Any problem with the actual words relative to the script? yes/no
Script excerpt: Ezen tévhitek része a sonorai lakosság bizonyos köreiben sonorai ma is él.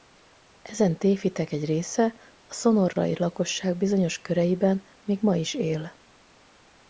yes